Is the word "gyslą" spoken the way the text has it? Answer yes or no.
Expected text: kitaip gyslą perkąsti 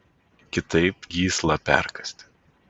yes